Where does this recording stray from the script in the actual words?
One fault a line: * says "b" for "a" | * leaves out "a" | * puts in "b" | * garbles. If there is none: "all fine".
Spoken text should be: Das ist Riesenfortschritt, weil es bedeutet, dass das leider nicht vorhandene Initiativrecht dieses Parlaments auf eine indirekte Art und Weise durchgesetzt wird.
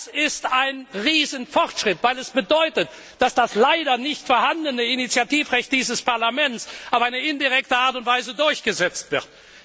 * puts in "ein"